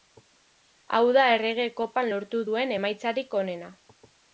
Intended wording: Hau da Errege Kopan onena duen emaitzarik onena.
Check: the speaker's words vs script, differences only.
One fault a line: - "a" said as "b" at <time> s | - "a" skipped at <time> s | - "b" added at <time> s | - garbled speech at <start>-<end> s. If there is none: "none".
- "onena" said as "lortu" at 2.1 s